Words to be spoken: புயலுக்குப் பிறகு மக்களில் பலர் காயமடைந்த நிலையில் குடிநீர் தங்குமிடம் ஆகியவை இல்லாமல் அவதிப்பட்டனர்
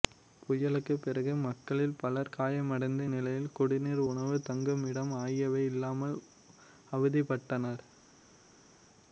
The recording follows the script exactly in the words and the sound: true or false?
false